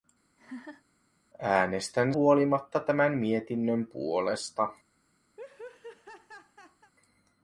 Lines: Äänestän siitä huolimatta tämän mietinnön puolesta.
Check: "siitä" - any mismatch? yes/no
yes